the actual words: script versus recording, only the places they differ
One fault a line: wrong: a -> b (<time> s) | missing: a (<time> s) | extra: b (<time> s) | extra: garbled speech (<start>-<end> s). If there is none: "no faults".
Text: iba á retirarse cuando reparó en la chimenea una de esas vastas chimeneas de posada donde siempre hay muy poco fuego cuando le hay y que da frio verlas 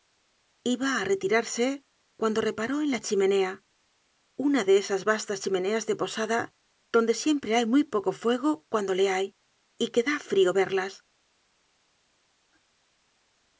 no faults